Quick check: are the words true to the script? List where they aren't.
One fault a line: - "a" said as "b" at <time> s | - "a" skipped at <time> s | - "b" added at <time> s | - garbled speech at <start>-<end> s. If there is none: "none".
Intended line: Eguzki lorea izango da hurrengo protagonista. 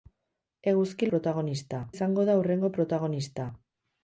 - "lorea" said as "protagonista" at 1.1 s